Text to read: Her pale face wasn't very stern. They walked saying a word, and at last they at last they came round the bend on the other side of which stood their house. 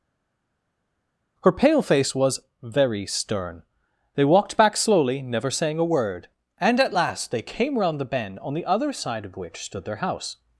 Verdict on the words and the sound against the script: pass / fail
fail